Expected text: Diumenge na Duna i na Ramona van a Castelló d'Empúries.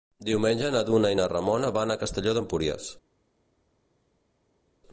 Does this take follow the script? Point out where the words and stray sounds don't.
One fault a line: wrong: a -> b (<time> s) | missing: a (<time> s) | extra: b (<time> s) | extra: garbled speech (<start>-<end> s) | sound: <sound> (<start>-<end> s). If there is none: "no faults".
no faults